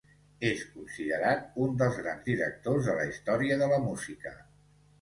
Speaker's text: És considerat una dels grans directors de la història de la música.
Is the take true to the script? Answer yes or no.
no